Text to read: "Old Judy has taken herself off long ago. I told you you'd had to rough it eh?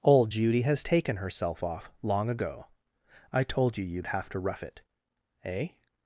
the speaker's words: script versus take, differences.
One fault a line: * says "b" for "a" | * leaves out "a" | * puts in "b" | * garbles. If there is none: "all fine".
* says "have" for "had"